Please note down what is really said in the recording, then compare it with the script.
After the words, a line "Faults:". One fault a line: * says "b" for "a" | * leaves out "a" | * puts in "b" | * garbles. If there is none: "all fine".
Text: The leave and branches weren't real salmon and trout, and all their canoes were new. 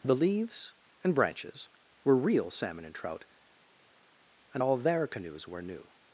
The leaves and branches were real salmon and trout, and all their canoes were new.
Faults:
* says "leaves" for "leave"
* says "were" for "weren't"